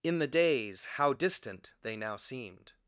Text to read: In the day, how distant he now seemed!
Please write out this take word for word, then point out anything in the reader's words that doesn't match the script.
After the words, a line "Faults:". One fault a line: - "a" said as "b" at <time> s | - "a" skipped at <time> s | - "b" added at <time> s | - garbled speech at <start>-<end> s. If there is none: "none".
In the days, how distant they now seemed!
Faults:
- "day" said as "days" at 0.3 s
- "he" said as "they" at 1.8 s